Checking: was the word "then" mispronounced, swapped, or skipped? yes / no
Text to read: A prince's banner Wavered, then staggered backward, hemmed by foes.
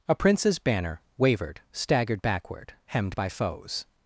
yes